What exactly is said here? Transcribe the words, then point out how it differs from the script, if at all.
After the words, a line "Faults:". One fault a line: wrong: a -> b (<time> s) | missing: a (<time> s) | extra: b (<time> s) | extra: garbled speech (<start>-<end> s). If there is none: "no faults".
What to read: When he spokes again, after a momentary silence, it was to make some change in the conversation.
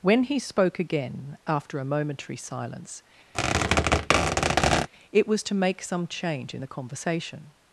When he spoke again, after a momentary silence, it was to make some change in the conversation.
Faults:
wrong: spokes -> spoke (0.4 s)